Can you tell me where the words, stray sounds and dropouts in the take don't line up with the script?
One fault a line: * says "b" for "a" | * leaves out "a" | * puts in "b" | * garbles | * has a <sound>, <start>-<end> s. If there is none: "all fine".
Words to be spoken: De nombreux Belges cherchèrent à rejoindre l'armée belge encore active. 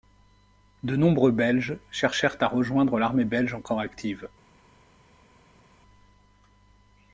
all fine